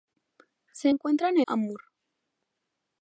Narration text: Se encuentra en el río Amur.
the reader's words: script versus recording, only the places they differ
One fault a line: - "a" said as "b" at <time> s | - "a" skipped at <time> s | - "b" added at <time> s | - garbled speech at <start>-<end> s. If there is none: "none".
- "el río" skipped at 1.4 s